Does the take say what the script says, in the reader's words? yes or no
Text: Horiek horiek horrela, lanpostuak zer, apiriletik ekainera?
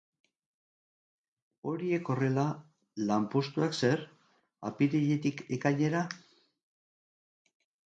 no